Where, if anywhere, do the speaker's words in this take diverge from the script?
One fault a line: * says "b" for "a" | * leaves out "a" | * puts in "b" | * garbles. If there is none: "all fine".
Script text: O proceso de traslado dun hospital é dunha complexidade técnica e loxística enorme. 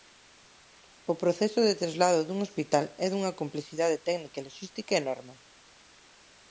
all fine